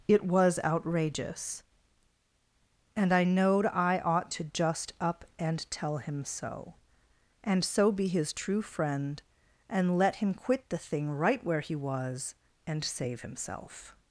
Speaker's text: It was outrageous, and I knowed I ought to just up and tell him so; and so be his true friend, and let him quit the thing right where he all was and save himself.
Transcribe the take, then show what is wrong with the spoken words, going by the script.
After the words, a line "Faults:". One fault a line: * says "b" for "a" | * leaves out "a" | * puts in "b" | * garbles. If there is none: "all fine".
It was outrageous, and I knowed I ought to just up and tell him so; and so be his true friend, and let him quit the thing right where he was and save himself.
Faults:
* leaves out "all"